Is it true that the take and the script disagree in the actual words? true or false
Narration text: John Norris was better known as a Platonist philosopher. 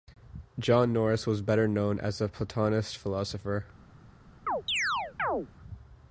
false